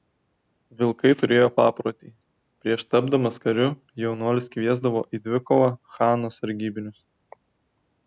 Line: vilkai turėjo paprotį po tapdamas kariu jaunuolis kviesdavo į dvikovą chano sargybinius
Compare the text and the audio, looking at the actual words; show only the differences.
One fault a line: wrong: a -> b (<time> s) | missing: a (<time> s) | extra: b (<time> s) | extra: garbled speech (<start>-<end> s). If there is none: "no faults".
wrong: po -> prieš (2.6 s)